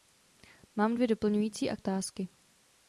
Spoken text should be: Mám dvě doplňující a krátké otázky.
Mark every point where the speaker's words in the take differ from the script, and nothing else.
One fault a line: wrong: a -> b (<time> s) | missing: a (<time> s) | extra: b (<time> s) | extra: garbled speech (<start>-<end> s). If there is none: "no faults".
missing: krátké (1.8 s)